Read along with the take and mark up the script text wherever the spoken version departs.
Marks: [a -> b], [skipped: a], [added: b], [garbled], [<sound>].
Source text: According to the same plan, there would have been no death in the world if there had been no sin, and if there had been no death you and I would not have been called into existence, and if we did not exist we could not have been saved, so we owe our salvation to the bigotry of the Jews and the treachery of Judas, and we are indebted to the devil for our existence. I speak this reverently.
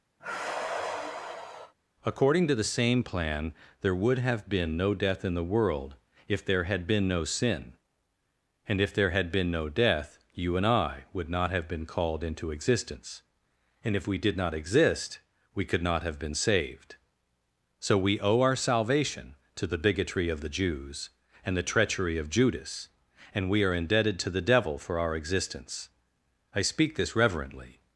[sigh] According to the same plan, there would have been no death in the world if there had been no sin, and if there had been no death you and I would not have been called into existence, and if we did not exist we could not have been saved, so we owe our salvation to the bigotry of the Jews and the treachery of Judas, and we are indebted to the devil for our existence. I speak this reverently.